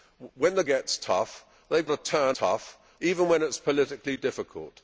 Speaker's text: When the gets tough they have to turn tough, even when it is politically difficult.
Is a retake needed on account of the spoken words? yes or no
no